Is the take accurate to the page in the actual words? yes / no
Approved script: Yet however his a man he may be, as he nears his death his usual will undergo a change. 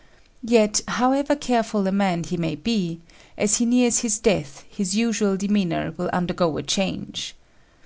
no